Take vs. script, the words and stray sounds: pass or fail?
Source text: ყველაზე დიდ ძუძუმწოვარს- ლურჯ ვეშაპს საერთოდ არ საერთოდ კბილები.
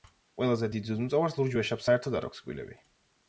fail